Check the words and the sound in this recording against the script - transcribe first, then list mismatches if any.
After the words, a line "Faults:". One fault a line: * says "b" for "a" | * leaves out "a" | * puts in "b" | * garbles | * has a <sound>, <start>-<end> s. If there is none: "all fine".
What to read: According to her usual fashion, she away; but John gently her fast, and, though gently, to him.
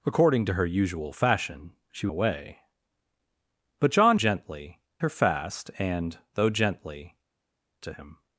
According to her usual fashion, she away; but John gently her fast, and, though gently, to him.
Faults:
all fine